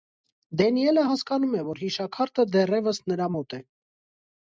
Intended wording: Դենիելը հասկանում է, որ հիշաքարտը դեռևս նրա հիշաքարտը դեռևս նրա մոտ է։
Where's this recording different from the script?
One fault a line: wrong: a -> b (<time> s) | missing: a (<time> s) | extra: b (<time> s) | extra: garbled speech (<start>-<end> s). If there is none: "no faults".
missing: հիշաքարտը դեռևս նրա (3.3 s)